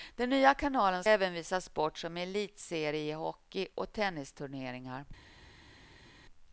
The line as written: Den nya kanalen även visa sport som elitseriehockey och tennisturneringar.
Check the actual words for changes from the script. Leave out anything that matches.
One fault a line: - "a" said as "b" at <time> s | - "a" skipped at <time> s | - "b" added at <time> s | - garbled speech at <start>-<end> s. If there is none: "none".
none